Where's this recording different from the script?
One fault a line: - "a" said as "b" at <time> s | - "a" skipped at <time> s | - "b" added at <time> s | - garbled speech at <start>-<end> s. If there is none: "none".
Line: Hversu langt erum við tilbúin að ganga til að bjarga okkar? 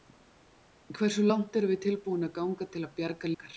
none